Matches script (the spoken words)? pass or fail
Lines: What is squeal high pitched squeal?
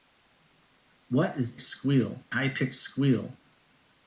pass